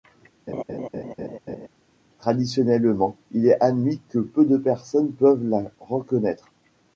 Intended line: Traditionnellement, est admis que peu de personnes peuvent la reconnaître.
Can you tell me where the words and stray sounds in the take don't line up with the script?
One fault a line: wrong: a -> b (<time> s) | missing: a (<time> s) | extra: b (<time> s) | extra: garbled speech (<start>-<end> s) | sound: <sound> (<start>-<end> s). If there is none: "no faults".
sound: laugh (0.5-1.7 s)
extra: il (3.3 s)